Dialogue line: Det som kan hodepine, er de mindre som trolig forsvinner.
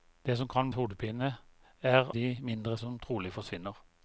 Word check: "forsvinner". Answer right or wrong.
right